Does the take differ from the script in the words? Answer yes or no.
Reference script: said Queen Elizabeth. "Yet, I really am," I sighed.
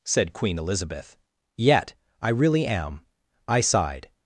no